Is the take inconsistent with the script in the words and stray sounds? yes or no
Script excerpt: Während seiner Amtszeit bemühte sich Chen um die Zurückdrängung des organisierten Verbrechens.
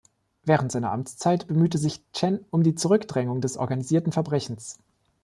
no